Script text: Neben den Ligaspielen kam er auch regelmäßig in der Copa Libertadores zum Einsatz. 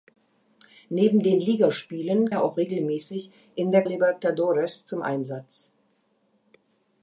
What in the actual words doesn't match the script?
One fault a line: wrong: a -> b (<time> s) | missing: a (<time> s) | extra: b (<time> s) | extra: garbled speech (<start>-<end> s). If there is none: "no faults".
missing: kam (2.3 s)
missing: Copa (3.9 s)